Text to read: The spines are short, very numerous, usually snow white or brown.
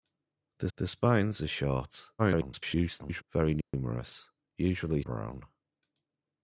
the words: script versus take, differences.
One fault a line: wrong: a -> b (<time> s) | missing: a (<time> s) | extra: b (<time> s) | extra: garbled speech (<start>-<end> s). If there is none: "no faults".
extra: the (0.7 s)
extra: garbled speech (2.2-3.2 s)
missing: snow white or (5.0 s)